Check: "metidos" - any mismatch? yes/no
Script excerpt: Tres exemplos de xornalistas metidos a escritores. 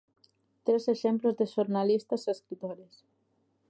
yes